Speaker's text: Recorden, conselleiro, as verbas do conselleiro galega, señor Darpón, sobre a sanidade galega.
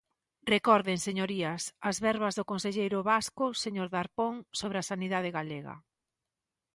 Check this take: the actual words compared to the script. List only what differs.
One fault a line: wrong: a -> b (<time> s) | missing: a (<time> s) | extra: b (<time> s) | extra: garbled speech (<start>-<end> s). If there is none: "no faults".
wrong: conselleiro -> señorías (1.1 s)
wrong: galega -> vasco (3.1 s)